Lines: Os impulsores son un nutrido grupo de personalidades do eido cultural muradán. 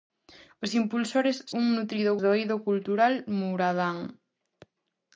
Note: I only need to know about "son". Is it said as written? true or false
false